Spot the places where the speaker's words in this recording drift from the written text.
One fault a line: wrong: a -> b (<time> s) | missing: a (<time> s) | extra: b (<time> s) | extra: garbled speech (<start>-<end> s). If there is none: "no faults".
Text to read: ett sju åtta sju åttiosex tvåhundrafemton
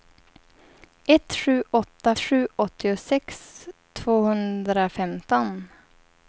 no faults